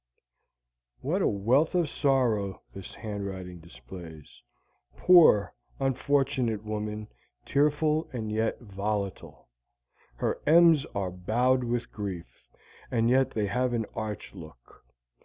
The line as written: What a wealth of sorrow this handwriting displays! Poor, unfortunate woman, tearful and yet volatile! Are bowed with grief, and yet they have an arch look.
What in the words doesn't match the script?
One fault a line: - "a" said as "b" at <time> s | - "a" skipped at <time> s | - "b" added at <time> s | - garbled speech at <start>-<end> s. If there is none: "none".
- "Her M's" added at 10.2 s